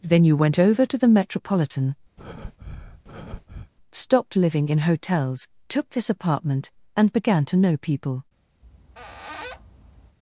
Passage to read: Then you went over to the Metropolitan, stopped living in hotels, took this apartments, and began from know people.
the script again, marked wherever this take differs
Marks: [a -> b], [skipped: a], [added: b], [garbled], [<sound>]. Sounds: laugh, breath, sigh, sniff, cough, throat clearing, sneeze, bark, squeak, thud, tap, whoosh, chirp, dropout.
Then you went over to the Metropolitan, [breath] stopped living in hotels, took this [apartments, -> apartment] and began [from -> to] know people. [squeak]